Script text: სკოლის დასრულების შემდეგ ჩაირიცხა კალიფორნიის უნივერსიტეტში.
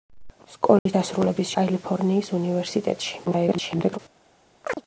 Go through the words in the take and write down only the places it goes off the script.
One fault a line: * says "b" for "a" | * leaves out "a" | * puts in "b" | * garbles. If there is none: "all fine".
* leaves out "შემდეგ ჩაირიცხა"
* garbles